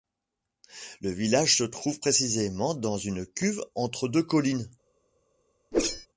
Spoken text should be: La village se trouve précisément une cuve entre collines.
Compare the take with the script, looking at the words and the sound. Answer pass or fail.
fail